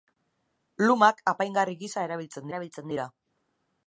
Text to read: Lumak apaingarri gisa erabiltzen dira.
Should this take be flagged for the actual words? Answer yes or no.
yes